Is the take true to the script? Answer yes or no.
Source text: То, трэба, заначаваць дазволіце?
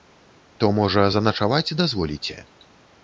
no